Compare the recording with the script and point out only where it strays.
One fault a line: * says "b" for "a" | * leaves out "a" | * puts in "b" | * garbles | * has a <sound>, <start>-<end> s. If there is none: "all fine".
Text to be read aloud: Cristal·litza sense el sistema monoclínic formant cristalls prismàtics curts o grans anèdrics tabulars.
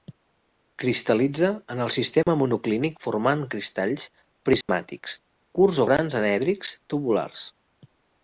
* says "en" for "sense"
* has a dropout, 2.2-2.3 s
* has a dropout, 4.6-4.7 s